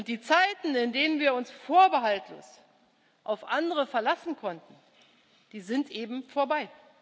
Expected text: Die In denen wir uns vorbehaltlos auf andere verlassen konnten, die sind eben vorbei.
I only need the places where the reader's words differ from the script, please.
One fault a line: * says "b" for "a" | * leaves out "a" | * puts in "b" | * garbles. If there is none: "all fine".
* puts in "Zeiten"